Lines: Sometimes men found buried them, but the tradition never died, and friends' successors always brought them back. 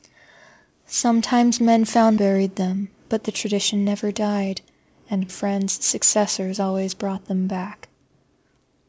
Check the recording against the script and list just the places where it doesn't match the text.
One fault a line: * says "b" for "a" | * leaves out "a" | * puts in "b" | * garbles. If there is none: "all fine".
all fine